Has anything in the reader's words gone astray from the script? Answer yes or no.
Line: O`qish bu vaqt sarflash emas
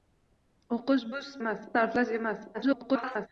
yes